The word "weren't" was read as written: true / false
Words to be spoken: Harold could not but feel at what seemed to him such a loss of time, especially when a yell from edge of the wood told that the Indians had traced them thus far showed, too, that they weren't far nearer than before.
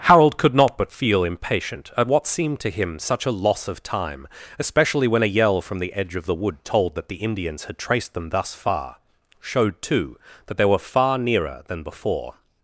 false